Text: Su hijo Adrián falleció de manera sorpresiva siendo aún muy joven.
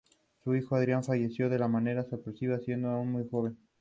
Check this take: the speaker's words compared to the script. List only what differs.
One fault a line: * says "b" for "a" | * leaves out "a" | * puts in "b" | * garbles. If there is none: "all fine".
all fine